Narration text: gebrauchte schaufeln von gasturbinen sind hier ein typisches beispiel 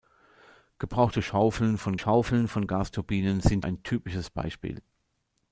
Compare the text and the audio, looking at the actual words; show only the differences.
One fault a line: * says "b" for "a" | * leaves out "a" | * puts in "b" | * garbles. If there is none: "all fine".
* puts in "schaufeln von"
* leaves out "hier"